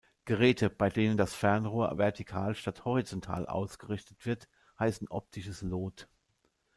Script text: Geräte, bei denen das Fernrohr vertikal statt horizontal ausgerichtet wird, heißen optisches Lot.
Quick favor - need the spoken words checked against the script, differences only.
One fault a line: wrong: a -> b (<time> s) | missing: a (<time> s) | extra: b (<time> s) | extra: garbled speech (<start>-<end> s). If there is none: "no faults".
no faults